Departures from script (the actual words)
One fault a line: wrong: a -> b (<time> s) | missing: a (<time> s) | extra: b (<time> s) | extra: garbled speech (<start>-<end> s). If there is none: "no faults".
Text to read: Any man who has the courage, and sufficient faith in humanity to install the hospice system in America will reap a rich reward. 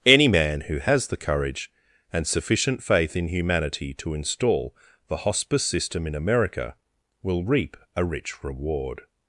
no faults